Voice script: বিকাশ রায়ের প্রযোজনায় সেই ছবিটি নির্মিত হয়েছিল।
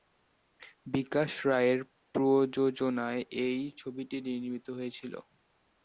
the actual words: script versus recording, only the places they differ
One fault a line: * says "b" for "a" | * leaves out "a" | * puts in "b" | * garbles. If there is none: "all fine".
* says "এই" for "সেই"